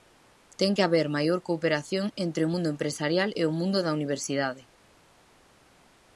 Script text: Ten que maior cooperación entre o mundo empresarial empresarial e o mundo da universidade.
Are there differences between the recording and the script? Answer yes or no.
yes